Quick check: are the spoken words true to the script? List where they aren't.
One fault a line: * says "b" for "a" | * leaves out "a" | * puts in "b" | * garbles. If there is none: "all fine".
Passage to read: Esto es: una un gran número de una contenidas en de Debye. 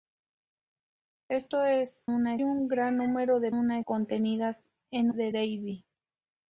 all fine